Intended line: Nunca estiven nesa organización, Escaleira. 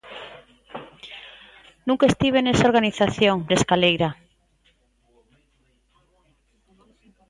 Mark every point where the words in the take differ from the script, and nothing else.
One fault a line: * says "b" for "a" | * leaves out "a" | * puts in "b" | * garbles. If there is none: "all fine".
all fine